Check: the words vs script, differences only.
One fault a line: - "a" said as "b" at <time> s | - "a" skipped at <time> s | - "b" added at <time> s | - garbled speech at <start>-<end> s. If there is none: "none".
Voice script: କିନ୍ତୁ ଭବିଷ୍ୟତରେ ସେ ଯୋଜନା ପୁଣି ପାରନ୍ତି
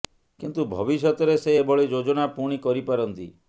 - "ଏଭଳି" added at 1.6 s
- "କରି" added at 2.6 s